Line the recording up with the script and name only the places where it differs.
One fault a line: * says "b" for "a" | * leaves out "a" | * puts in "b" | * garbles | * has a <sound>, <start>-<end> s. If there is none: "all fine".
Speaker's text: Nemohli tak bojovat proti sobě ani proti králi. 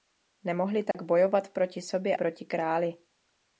* has a dropout, 0.9-0.9 s
* leaves out "ani"